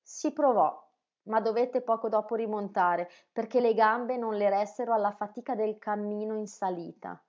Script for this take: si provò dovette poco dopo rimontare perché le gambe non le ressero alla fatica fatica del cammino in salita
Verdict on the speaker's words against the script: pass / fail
fail